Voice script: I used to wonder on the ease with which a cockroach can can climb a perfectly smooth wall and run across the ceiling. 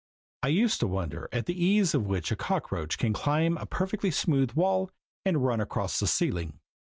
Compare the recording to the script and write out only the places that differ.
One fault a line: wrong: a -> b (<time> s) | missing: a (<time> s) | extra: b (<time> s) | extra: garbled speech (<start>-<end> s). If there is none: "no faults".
wrong: on -> at (1.3 s)
missing: can (3.1 s)